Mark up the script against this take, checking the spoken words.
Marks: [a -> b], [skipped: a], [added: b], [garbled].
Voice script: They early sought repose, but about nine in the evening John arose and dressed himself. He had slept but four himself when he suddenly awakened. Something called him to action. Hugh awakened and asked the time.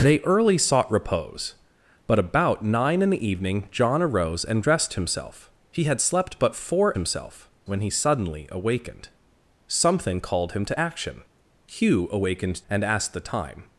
They early sought repose, but about nine in the evening John arose and dressed himself. He had slept but four himself when he suddenly awakened. Something called him to action. Hugh awakened and asked the time.